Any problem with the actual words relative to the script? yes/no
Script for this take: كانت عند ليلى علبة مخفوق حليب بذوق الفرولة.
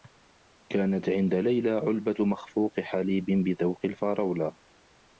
no